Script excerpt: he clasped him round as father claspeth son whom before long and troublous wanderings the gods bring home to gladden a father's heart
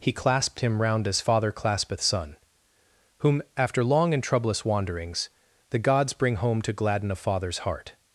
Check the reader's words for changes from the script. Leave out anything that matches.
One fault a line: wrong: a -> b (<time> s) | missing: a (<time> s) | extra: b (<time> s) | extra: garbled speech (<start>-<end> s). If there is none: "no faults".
wrong: before -> after (3.6 s)